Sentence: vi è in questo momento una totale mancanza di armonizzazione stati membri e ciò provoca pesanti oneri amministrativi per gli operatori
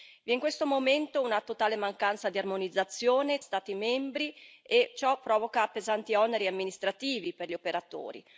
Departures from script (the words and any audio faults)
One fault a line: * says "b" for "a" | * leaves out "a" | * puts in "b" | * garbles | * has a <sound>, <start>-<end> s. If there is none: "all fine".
all fine